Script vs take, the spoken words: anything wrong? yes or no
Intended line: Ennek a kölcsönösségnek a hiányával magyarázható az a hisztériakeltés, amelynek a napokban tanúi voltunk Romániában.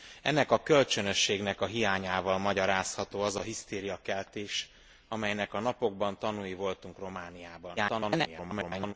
yes